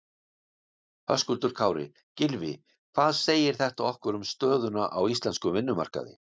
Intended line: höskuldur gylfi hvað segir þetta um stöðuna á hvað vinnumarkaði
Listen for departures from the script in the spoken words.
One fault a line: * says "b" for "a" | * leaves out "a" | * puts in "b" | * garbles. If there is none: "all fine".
* puts in "kári"
* puts in "okkur"
* says "íslenskum" for "hvað"